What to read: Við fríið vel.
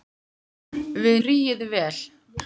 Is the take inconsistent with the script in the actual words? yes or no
no